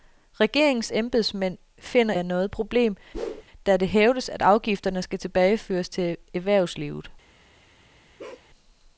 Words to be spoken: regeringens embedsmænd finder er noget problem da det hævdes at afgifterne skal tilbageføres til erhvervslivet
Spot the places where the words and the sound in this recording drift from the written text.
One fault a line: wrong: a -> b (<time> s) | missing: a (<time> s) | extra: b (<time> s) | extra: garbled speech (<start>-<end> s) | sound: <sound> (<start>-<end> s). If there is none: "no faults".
sound: whoosh (3.1-3.4 s)
sound: bark (8.2-8.5 s)